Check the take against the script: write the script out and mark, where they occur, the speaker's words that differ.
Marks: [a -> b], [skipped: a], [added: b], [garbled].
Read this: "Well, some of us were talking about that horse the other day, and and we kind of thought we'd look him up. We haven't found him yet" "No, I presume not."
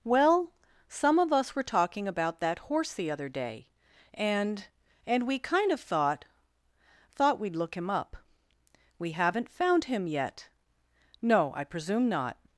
"Well, some of us were talking about that horse the other day, and and we kind of thought [added: thought] we'd look him up. We haven't found him yet" "No, I presume not."